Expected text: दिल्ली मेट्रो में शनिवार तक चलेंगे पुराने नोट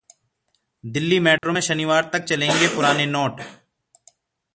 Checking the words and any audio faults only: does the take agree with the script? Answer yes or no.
no